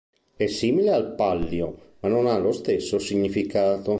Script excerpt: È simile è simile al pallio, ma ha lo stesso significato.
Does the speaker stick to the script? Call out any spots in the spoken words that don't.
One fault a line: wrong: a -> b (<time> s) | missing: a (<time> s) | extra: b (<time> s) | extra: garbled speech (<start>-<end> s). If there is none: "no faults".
missing: è simile (0.9 s)
extra: non (2.1 s)